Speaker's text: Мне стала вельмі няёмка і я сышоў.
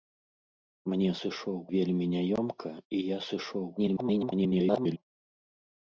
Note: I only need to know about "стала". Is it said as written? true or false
false